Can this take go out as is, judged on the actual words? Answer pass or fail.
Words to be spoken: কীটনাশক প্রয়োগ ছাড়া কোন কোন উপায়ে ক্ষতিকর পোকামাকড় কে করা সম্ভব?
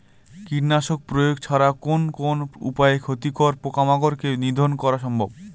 fail